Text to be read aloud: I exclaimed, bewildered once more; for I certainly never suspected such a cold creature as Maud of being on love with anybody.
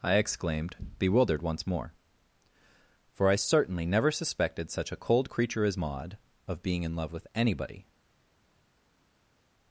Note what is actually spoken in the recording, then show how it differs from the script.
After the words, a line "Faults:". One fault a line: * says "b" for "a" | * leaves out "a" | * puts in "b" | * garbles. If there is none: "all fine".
I exclaimed, bewildered once more; for I certainly never suspected such a cold creature as Maud of being in love with anybody.
Faults:
* says "in" for "on"